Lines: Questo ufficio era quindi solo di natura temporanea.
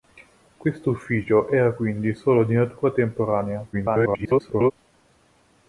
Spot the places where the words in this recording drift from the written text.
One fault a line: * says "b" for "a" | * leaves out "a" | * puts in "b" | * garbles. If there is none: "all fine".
* garbles